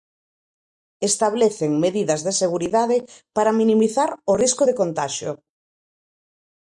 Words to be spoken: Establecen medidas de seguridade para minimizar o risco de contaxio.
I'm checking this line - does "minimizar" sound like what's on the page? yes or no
yes